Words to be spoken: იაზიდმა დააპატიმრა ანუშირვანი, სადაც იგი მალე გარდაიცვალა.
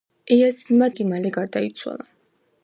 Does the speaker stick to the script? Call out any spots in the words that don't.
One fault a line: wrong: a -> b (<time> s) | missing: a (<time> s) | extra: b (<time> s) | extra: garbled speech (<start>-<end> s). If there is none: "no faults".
missing: დააპატიმრა ანუშირვანი სადაც (0.9 s)